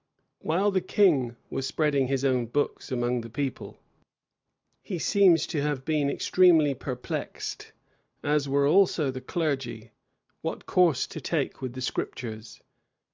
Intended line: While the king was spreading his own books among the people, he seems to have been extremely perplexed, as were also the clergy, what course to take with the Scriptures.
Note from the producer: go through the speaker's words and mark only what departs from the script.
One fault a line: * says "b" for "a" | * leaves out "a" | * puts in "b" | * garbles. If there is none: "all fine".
all fine